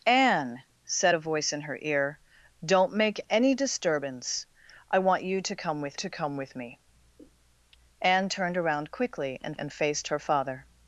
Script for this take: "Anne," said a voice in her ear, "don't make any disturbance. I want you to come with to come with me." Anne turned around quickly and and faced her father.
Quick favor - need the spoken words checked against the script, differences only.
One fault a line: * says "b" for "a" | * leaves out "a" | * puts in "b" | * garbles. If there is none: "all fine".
all fine